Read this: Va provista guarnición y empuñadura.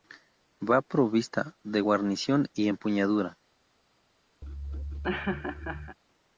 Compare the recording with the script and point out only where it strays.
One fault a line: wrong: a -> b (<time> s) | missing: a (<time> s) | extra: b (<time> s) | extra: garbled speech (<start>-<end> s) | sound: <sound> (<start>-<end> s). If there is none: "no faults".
extra: de (1.6 s)
sound: laugh (4.4-6.0 s)